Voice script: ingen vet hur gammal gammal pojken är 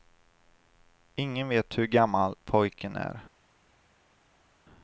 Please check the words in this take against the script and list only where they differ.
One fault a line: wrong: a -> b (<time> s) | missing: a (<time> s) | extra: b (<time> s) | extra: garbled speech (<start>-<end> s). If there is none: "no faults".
missing: gammal (2.4 s)